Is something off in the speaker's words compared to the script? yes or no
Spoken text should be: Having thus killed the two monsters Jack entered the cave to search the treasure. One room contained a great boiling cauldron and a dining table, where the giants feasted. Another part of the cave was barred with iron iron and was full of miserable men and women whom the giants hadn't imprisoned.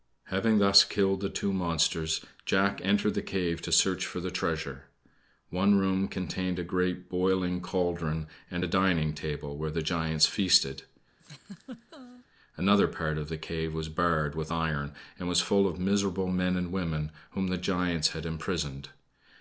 yes